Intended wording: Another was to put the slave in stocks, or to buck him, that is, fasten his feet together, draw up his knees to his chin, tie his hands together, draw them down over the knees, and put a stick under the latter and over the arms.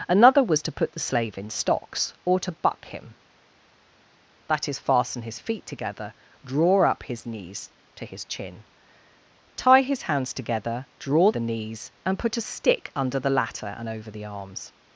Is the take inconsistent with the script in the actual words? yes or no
yes